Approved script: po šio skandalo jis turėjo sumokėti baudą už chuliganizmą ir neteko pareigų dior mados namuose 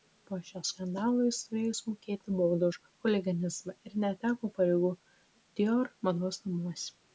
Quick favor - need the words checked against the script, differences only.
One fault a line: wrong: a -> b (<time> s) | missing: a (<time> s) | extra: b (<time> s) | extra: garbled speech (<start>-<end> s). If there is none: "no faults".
no faults